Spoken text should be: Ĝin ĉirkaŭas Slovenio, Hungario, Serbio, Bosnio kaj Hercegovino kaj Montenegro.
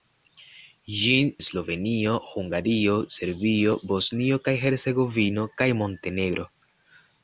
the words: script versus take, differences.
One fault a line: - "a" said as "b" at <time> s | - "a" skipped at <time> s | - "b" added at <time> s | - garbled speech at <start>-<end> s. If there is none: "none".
- "ĉirkaŭas" skipped at 1.3 s